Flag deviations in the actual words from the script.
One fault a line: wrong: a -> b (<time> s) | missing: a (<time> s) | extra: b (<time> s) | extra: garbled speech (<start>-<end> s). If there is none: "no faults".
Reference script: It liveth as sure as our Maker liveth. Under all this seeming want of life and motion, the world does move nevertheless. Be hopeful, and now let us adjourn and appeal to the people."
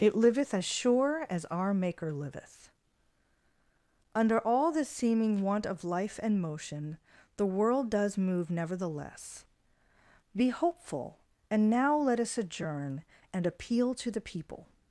no faults